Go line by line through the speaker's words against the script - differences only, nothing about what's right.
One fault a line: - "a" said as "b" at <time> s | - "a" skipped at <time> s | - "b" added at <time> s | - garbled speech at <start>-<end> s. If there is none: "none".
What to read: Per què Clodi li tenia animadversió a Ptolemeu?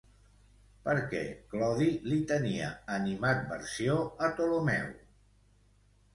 none